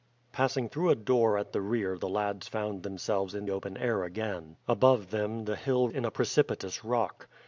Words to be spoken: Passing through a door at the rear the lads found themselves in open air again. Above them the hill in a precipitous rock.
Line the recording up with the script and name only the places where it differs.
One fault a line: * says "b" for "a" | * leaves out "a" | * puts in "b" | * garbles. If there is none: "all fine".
all fine